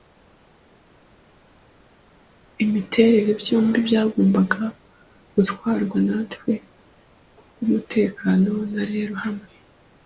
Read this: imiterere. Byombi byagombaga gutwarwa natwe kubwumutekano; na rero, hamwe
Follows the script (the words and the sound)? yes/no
yes